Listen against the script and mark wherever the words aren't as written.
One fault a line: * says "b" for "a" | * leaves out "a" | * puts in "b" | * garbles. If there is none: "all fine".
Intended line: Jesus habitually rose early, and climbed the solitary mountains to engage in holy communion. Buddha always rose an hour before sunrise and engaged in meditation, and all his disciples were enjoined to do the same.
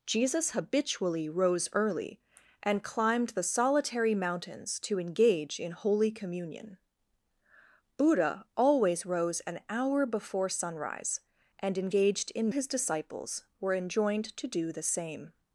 * leaves out "meditation and all"